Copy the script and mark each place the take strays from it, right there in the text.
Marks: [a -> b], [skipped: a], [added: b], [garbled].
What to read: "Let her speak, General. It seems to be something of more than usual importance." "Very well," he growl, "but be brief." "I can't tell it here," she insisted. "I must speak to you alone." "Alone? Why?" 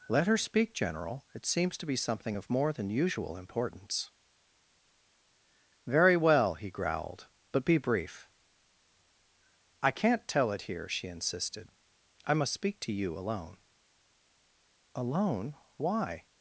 "Let her speak, General. It seems to be something of more than usual importance." "Very well," he [growl, -> growled] "but be brief." "I can't tell it here," she insisted. "I must speak to you alone." "Alone? Why?"